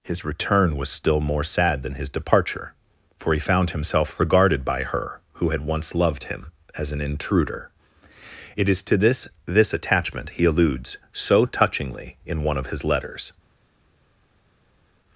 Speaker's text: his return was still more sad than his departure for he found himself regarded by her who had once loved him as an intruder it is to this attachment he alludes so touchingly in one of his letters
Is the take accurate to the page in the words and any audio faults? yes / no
no